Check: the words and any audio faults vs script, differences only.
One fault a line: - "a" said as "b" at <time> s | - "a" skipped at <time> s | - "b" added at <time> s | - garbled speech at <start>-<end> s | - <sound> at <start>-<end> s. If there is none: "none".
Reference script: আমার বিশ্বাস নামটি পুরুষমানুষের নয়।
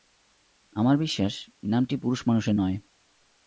none